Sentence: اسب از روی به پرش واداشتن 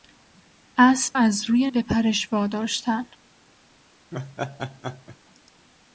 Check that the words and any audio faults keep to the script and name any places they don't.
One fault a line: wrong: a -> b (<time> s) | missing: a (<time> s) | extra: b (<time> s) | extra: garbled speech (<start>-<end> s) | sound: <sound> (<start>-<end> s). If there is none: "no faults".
sound: laugh (4.1-5.2 s)